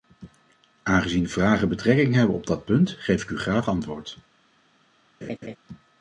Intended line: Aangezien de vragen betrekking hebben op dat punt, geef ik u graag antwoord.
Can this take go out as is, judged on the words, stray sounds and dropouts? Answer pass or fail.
fail